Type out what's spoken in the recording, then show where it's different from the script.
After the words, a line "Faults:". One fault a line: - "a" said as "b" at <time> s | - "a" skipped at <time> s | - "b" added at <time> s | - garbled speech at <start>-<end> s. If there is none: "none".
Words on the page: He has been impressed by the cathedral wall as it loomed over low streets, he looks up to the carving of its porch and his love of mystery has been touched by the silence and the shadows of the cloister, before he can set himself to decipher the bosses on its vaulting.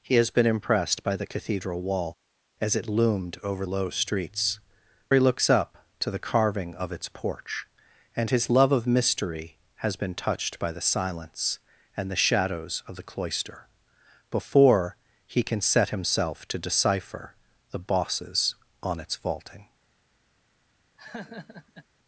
He has been impressed by the cathedral wall as it loomed over low streets, he looks up to the carving of its porch and his love of mystery has been touched by the silence and the shadows of the cloister, before he can set himself to decipher the bosses on its vaulting.
Faults:
none